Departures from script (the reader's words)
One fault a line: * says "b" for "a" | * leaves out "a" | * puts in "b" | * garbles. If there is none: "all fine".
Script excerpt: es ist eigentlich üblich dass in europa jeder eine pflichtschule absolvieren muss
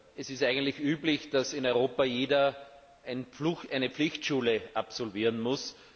all fine